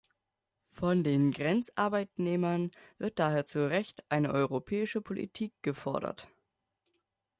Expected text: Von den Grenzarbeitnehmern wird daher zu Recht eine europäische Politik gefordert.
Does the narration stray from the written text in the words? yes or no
no